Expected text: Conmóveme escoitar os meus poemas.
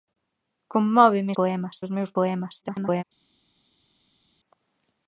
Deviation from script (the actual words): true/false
true